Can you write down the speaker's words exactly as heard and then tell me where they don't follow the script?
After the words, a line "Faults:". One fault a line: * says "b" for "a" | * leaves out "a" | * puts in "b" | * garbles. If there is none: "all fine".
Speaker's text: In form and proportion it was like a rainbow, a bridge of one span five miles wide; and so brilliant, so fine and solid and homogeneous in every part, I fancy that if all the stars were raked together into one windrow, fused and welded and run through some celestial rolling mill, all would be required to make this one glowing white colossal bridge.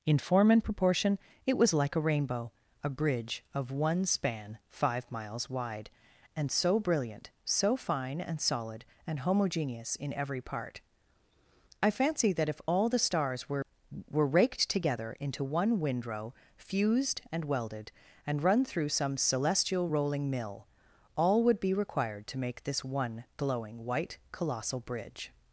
In form and proportion it was like a rainbow, a bridge of one span five miles wide; and so brilliant, so fine and solid and homogeneous in every part, I fancy that if all the stars were were raked together into one windrow, fused and welded and run through some celestial rolling mill, all would be required to make this one glowing white colossal bridge.
Faults:
* puts in "were"